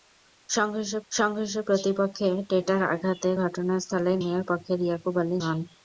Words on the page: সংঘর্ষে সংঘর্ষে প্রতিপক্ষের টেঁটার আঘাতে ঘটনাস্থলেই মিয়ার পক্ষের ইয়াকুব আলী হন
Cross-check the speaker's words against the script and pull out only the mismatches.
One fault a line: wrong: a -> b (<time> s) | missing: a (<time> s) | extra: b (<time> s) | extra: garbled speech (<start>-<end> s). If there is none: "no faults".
no faults